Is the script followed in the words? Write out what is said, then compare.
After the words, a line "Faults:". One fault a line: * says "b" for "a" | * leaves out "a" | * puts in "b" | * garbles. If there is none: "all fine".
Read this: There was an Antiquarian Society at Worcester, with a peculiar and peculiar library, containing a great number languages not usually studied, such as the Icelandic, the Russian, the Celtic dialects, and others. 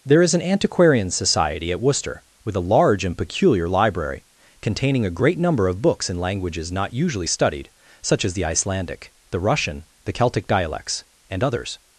There is an Antiquarian Society at Worcester, with a large and peculiar library, containing a great number of books in languages not usually studied, such as the Icelandic, the Russian, the Celtic dialects, and others.
Faults:
* says "is" for "was"
* says "large" for "peculiar"
* puts in "of books in"